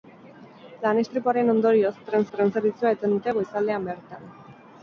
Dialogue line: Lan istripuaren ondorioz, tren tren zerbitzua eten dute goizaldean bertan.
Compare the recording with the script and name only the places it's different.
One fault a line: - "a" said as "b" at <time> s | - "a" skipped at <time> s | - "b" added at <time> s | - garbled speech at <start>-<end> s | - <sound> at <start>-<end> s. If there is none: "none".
none